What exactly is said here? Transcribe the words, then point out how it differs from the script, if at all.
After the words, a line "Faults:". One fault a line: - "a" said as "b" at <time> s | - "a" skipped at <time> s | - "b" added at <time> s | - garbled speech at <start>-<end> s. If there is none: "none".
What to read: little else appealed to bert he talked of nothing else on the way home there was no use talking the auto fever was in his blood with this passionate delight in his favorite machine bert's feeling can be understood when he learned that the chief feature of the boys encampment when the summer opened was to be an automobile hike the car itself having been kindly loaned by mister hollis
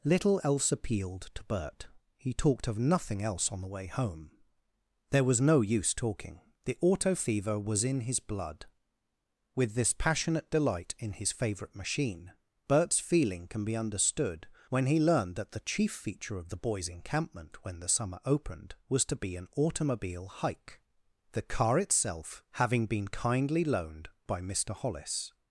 little else appealed to bert he talked of nothing else on the way home there was no use talking the auto fever was in his blood with this passionate delight in his favorite machine bert's feeling can be understood when he learned that the chief feature of the boys encampment when the summer opened was to be an automobile hike the car itself having been kindly loaned by mister hollis
Faults:
none